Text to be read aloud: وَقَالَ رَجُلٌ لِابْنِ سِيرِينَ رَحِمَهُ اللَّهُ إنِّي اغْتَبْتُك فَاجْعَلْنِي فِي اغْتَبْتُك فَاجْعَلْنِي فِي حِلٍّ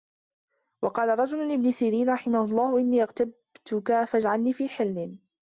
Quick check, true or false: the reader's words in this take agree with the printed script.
false